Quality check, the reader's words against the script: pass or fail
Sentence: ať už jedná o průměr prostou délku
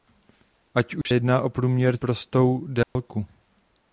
pass